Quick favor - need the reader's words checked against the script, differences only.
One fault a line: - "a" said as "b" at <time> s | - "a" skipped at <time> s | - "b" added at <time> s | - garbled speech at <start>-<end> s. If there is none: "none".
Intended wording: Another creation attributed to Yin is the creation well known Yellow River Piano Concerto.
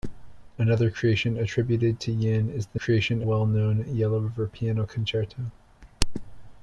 none